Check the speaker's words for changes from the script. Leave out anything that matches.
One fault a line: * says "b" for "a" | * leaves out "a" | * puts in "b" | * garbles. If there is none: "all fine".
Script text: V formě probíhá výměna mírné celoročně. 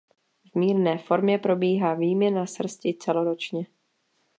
* puts in "mírné"
* says "srsti" for "mírné"